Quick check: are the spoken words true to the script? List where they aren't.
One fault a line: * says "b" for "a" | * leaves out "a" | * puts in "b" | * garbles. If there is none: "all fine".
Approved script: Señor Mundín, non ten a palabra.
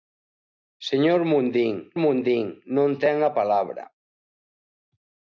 * puts in "Mundín"